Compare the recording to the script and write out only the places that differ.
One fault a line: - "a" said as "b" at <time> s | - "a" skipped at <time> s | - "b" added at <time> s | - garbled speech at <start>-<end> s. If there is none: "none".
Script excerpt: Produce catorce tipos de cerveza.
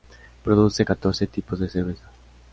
none